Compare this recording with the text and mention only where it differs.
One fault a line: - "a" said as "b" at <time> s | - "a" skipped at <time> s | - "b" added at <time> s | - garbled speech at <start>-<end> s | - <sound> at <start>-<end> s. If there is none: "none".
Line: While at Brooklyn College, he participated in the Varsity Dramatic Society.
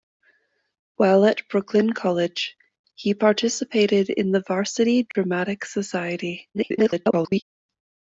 - dropout at 5.1-5.1 s
- garbled speech at 6.5-7.4 s